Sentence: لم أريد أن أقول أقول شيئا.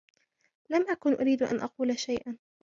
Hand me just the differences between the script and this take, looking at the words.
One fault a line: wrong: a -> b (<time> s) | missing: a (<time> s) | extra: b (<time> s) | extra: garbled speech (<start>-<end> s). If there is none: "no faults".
extra: أكن (0.9 s)
missing: أقول (2.0 s)